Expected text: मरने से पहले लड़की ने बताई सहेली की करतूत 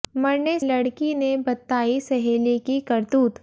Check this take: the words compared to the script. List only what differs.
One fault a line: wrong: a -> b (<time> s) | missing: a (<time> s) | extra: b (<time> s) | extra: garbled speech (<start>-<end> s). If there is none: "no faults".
missing: से पहले (0.6 s)